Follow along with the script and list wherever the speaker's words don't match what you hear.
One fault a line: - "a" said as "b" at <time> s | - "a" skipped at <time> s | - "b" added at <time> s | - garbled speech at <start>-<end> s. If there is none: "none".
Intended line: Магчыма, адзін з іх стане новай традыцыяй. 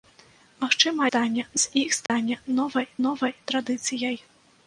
- "адзін" said as "стане" at 1.1 s
- "новай" added at 3.1 s